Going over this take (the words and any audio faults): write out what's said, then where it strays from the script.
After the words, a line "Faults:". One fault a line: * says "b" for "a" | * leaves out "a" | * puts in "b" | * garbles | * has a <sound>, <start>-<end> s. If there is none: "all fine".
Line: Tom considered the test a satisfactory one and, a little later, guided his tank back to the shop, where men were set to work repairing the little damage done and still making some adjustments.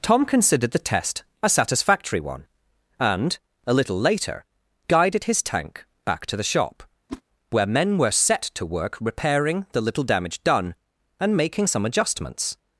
Tom considered the test a satisfactory one and, a little later, guided his tank back to the shop, where men were set to work repairing the little damage done and making some adjustments.
Faults:
* has a whoosh, 7.1-7.2 s
* leaves out "still"